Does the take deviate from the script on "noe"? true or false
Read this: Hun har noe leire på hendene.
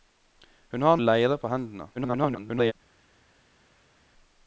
true